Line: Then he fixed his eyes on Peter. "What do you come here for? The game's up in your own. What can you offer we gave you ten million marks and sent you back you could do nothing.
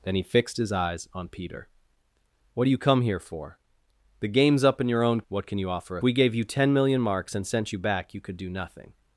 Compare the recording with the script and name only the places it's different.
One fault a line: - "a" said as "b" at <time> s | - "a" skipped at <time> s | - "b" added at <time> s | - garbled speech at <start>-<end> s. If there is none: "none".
none